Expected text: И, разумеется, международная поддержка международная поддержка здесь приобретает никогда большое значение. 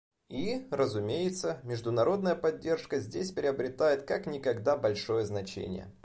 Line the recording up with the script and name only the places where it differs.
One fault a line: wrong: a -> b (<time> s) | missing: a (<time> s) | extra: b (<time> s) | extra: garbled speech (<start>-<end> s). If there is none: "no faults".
missing: международная поддержка (3.0 s)
extra: как (4.0 s)